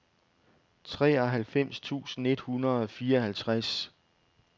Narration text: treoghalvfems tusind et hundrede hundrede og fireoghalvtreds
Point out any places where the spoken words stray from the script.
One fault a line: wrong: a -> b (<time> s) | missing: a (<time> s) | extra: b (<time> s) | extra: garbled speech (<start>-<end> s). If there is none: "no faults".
missing: hundrede (2.8 s)